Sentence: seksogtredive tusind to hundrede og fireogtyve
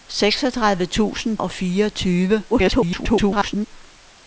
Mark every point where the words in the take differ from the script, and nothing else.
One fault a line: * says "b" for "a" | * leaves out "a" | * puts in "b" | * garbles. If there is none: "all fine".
* leaves out "to hundrede"
* garbles